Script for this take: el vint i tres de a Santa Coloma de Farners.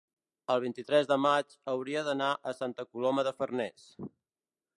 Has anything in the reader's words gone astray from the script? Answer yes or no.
yes